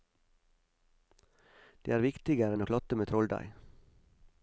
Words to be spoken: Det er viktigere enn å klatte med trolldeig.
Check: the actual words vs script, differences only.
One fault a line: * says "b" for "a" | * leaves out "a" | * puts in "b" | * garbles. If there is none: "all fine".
all fine